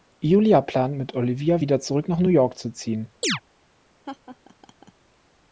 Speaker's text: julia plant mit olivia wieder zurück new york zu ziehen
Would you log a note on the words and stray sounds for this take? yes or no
yes